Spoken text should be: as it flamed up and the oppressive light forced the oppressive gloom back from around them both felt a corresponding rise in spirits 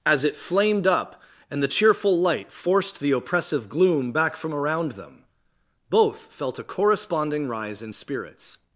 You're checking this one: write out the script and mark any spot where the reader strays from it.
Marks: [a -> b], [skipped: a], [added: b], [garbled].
as it flamed up and the [oppressive -> cheerful] light forced the oppressive gloom back from around them both felt a corresponding rise in spirits